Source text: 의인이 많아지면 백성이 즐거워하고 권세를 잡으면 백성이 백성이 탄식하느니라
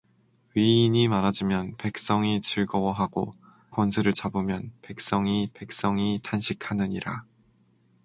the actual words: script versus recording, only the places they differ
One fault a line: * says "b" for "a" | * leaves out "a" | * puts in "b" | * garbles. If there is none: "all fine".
all fine